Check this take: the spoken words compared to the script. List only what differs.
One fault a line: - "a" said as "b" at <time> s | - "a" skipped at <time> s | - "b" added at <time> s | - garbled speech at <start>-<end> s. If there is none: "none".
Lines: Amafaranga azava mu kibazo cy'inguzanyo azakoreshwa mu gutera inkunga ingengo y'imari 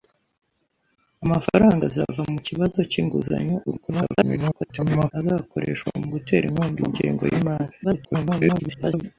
- garbled speech at 3.7-5.1 s
- garbled speech at 7.8-9.0 s